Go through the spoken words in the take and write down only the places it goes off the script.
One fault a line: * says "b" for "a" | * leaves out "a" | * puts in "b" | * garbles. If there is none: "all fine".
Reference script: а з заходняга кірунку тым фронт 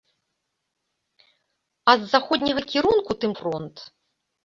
all fine